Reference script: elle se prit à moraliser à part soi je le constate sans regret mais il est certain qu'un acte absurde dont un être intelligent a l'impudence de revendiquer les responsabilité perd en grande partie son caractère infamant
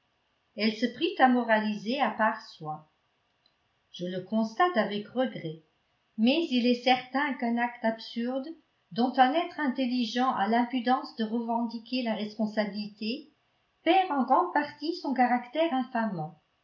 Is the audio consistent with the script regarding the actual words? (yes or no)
no